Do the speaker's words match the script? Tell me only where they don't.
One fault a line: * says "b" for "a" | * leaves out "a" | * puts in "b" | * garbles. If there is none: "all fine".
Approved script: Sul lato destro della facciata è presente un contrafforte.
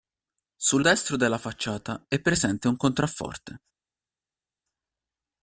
* leaves out "lato"